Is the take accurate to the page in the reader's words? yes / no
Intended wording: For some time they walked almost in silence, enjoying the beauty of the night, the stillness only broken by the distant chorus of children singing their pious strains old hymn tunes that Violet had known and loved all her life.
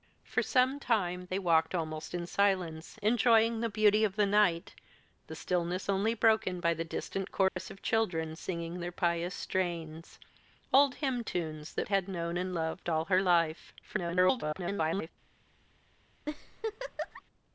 no